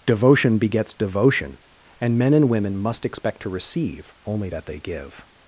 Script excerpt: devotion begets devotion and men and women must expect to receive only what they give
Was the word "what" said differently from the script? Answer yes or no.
yes